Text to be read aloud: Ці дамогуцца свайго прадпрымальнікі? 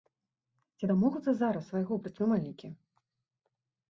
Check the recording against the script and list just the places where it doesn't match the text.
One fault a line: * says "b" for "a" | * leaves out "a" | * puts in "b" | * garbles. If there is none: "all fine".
* puts in "зараз"